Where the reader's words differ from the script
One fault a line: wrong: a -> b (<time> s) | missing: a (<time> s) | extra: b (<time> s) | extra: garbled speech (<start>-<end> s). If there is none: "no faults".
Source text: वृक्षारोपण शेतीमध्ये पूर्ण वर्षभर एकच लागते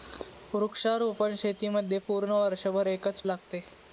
no faults